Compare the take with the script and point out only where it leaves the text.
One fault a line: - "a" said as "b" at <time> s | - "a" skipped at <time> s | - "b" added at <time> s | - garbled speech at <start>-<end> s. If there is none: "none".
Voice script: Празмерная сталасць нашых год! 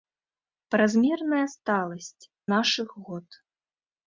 none